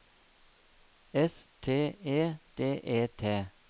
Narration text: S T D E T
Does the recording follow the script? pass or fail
fail